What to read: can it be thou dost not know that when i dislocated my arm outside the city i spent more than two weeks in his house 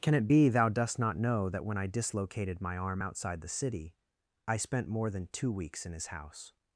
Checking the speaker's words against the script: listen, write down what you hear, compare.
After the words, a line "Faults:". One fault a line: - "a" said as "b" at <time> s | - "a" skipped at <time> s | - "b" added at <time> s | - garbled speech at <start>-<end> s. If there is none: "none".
can it be thou dost not know that when i dislocated my arm outside the city i spent more than two weeks in his house
Faults:
none